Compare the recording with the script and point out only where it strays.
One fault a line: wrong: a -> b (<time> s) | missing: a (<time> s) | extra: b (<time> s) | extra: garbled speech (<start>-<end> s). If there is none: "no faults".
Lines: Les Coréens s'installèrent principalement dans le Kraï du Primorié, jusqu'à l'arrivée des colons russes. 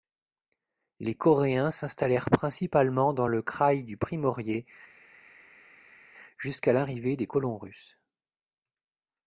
no faults